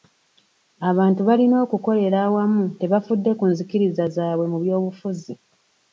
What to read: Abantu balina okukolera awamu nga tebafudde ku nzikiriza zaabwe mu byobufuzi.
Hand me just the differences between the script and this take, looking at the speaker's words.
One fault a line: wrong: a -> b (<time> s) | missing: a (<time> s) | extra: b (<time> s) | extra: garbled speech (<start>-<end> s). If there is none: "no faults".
missing: nga (2.6 s)